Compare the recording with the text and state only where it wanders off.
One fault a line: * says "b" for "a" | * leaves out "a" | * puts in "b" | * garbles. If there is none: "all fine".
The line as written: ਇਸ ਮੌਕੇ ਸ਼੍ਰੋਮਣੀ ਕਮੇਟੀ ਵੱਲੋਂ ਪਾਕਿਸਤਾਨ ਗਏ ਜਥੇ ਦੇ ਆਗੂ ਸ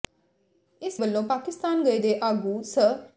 * leaves out "ਮੌਕੇ ਸ਼੍ਰੋਮਣੀ ਕਮੇਟੀ"
* leaves out "ਜਥੇ"